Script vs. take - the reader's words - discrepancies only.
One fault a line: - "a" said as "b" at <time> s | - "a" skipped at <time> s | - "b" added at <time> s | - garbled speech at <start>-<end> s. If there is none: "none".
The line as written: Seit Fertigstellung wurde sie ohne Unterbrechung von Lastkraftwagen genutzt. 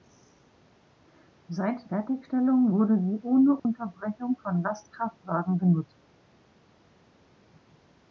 none